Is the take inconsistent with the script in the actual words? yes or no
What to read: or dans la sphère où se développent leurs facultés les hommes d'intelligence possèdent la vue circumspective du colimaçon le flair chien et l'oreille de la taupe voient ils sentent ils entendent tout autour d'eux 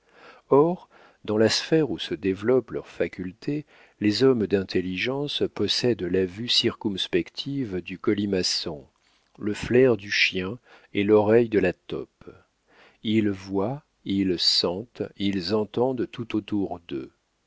yes